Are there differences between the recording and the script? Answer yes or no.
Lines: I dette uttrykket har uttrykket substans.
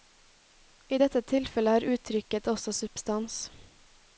yes